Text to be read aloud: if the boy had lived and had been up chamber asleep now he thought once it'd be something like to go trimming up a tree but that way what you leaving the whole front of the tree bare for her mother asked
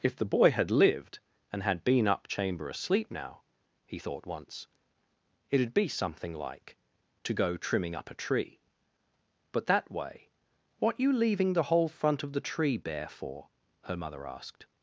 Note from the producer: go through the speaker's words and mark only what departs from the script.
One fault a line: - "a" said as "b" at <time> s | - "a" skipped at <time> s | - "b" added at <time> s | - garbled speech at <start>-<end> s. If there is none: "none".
none